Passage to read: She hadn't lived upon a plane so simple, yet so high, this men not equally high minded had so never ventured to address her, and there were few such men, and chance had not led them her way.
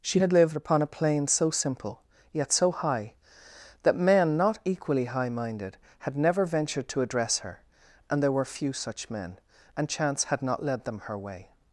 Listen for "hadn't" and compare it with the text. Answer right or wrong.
wrong